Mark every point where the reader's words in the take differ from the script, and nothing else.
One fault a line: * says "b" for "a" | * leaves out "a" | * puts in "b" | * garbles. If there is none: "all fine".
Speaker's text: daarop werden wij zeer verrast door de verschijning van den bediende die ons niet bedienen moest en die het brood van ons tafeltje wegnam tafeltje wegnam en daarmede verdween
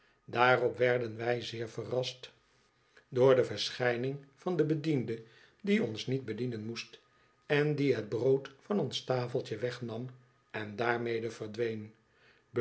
* leaves out "tafeltje wegnam"